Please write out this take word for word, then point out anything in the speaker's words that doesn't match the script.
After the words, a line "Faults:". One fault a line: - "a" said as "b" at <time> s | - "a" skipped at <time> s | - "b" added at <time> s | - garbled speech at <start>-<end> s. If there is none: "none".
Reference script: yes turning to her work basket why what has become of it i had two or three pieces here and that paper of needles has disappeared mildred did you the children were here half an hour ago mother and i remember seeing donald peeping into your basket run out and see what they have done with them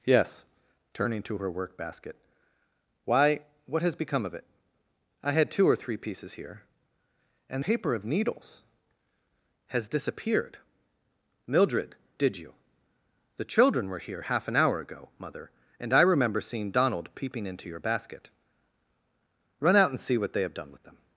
yes turning to her work basket why what has become of it i had two or three pieces here and paper of needles has disappeared mildred did you the children were here half an hour ago mother and i remember seeing donald peeping into your basket run out and see what they have done with them
Faults:
- "that" skipped at 7.7 s